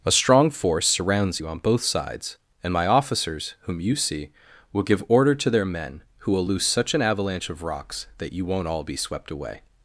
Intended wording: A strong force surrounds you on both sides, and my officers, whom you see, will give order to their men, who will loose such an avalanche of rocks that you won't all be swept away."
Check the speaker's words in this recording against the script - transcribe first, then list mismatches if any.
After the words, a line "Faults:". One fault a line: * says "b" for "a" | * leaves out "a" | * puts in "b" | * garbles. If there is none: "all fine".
A strong force surrounds you on both sides, and my officers, whom you see, will give order to their men, who will loose such an avalanche of rocks that you won't all be swept away."
Faults:
all fine